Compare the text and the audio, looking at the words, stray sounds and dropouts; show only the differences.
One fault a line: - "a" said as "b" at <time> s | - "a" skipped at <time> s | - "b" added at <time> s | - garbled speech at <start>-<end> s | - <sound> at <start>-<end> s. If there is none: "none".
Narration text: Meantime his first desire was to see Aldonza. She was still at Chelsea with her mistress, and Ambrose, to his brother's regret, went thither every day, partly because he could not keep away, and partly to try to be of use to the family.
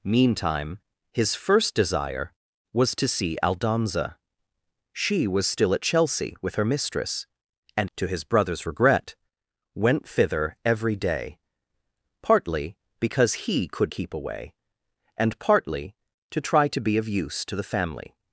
- "Ambrose" skipped at 7.9 s
- "not" skipped at 13.9 s